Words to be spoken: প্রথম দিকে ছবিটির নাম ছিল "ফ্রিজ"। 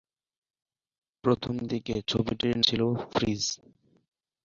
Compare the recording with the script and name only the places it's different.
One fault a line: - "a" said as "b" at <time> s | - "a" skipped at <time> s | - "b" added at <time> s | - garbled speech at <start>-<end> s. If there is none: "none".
- "নাম" skipped at 2.5 s